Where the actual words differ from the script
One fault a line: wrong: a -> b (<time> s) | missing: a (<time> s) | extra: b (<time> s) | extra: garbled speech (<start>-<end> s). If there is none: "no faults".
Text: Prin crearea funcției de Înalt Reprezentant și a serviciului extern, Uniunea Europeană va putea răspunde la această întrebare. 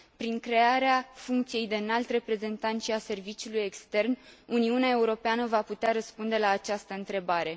no faults